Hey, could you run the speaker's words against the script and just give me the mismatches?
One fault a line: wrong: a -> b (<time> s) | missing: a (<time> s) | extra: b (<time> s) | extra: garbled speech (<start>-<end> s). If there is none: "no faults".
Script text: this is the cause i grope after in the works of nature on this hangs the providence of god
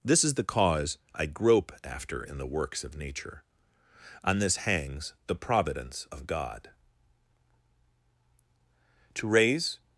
extra: to raise (9.1 s)